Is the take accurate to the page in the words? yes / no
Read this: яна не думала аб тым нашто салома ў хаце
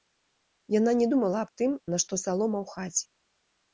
yes